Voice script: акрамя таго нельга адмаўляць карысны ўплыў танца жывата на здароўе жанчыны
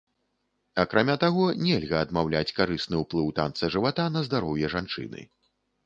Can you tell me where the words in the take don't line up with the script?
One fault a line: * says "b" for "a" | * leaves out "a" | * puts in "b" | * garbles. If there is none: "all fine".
all fine